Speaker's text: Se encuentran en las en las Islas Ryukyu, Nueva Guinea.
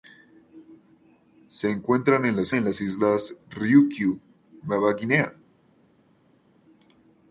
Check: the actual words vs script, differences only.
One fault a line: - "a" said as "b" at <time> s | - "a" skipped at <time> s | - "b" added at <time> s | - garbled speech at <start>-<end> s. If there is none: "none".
none